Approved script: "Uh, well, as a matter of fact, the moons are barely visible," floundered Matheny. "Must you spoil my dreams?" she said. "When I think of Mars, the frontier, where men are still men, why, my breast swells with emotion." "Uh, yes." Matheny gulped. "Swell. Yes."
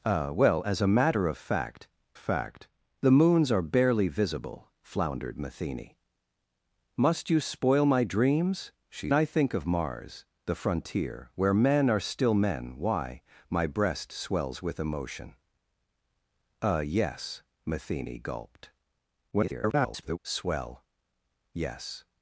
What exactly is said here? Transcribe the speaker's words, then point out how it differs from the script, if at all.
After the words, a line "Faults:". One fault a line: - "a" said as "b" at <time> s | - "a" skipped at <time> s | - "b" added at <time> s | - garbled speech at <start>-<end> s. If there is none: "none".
"Uh, well, as a matter of fact fact, the moons are barely visible," floundered Matheny. "Must you spoil my dreams?" she I think of Mars, the frontier, where men are still men, why, my breast swells with emotion." "Uh, yes." Matheny gulped. [garbled] "Swell. Yes."
Faults:
- "fact" added at 2.1 s
- "said When" skipped at 9.1 s
- garbled speech at 19.3-20.2 s